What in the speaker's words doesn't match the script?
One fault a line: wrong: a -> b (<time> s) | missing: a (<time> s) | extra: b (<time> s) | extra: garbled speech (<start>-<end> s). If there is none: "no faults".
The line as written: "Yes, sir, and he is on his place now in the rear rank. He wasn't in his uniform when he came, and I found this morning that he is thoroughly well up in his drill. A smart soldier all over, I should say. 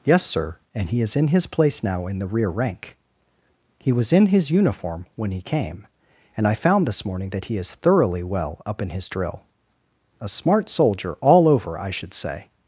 wrong: on -> in (1.1 s)
wrong: wasn't -> was (3.9 s)